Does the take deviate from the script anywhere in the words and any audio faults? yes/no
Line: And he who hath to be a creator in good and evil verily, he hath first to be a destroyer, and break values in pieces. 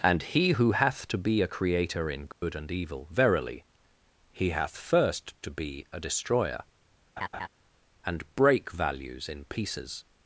yes